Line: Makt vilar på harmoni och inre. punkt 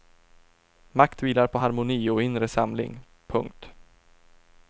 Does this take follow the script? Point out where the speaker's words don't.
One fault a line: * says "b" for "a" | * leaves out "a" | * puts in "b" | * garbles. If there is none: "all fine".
* puts in "samling"